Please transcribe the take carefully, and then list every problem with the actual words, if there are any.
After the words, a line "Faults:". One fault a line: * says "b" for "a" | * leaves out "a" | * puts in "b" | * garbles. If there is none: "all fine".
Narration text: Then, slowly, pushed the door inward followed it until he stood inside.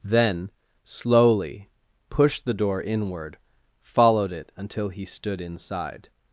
Then, slowly, pushed the door inward followed it until he stood inside.
Faults:
all fine